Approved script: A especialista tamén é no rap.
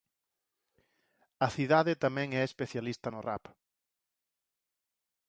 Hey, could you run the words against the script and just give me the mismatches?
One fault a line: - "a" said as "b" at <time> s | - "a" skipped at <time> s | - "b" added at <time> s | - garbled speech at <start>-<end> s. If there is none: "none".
- "especialista" said as "cidade" at 1.6 s
- "especialista" added at 2.4 s